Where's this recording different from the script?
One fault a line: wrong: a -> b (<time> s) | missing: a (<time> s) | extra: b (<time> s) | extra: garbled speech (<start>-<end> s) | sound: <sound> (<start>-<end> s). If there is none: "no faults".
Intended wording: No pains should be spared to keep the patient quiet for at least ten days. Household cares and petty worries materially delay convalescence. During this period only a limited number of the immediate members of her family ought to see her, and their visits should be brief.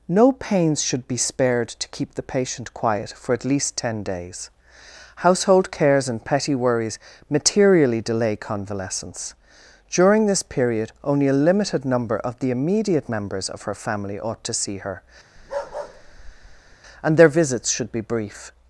sound: bark (15.4-16.8 s)